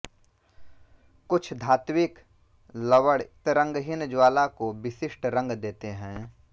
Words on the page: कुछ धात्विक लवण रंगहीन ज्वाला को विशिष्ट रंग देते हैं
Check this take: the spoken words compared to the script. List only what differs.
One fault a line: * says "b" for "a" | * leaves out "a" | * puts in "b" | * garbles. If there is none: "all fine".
all fine